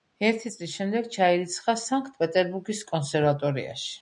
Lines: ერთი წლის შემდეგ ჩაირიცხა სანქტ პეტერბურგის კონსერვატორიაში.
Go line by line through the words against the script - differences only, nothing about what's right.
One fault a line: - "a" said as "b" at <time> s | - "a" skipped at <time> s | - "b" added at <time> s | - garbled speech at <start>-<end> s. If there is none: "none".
none